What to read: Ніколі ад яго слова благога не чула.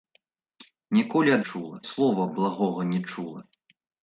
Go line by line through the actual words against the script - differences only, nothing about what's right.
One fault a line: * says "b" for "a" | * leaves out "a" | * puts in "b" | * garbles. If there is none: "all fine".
* says "чула" for "яго"